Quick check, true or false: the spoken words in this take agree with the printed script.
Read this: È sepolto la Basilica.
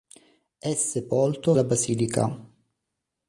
true